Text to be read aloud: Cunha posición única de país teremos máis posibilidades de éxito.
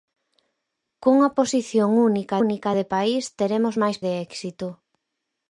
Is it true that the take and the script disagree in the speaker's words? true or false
true